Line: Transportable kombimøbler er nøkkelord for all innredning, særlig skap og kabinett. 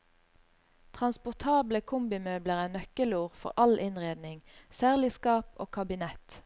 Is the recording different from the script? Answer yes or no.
no